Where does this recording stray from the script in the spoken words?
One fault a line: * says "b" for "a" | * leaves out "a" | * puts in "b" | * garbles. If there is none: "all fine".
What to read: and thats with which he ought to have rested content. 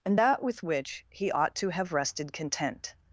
* says "that" for "thats"